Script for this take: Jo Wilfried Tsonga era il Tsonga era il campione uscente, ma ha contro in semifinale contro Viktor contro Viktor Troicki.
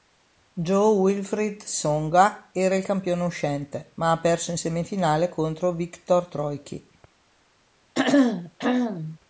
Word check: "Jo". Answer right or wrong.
right